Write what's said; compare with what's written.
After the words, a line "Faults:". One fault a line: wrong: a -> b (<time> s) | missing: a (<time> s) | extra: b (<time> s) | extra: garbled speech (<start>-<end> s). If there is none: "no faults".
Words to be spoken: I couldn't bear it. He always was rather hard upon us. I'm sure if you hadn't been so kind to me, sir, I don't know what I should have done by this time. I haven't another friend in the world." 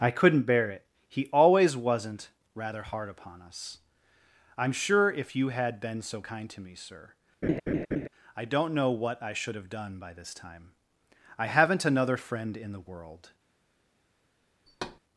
I couldn't bear it. He always wasn't rather hard upon us. I'm sure if you had been so kind to me, sir, I don't know what I should have done by this time. I haven't another friend in the world."
Faults:
wrong: was -> wasn't (1.8 s)
wrong: hadn't -> had (5.5 s)